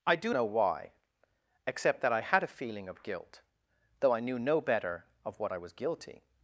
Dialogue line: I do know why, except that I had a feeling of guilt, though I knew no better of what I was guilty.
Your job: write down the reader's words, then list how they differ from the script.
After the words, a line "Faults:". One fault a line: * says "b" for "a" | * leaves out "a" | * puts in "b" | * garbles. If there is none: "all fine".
I do know why, except that I had a feeling of guilt, though I knew no better of what I was guilty.
Faults:
all fine